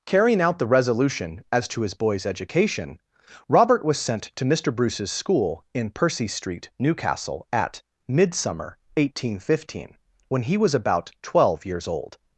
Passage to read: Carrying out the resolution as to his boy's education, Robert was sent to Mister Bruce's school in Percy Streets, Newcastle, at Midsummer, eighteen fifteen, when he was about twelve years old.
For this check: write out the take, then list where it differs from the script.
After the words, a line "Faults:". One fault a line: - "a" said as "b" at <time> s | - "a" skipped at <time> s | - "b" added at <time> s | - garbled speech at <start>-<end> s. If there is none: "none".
Carrying out the resolution as to his boy's education, Robert was sent to Mister Bruce's school in Percy Street, Newcastle, at Midsummer, eighteen fifteen, when he was about twelve years old.
Faults:
- "Streets" said as "Street" at 6.3 s